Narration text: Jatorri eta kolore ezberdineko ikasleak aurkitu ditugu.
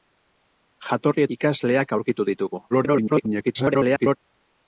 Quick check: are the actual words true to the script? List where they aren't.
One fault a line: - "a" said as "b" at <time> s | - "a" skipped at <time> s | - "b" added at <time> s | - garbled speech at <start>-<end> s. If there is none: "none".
- "eta kolore ezberdineko" skipped at 1.2 s
- garbled speech at 2.7-4.2 s